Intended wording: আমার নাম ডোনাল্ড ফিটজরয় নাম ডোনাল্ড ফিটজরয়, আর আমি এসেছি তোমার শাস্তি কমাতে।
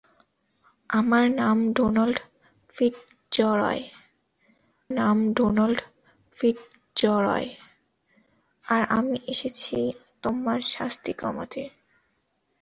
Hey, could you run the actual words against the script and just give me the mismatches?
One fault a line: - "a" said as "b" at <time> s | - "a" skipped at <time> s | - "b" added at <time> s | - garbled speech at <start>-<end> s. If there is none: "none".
none